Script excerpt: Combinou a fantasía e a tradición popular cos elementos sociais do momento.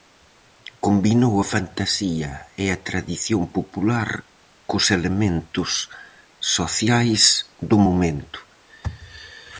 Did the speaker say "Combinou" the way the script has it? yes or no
yes